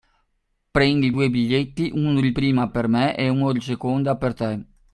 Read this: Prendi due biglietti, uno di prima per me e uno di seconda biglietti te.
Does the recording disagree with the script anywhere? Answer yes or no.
yes